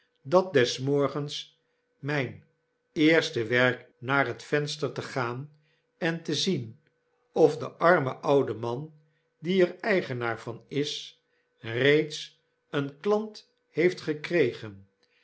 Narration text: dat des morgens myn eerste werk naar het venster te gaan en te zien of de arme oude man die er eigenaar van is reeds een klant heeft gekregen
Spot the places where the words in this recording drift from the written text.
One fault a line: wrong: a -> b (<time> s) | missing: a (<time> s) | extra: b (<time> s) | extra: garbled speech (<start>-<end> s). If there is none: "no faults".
no faults